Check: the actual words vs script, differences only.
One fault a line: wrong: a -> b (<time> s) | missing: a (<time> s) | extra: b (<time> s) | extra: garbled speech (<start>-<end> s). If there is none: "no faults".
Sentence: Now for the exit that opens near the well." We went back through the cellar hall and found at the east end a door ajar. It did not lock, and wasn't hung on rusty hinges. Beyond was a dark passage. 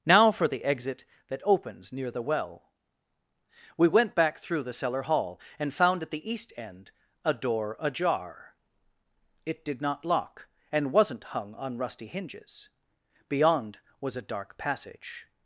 no faults